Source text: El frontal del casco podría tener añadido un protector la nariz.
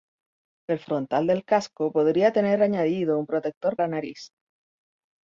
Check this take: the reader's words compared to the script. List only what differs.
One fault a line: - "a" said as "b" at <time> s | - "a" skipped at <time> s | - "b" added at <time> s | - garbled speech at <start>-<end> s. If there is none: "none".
none